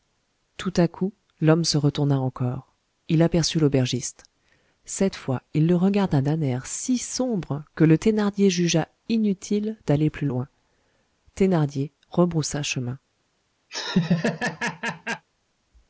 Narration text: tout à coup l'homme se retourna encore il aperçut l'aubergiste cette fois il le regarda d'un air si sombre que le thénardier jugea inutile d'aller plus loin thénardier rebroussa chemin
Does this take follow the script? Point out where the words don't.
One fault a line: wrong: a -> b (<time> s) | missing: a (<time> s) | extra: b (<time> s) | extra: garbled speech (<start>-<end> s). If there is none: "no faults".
no faults